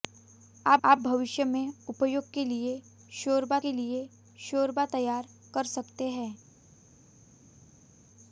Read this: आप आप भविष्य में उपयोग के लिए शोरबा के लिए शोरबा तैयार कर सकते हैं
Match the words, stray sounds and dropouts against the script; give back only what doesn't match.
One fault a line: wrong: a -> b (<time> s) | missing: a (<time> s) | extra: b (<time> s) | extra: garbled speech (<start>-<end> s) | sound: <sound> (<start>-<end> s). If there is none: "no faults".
no faults